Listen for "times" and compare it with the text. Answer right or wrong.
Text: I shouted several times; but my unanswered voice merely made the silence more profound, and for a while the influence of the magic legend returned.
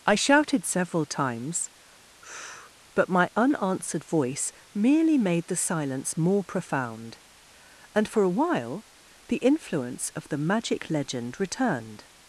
right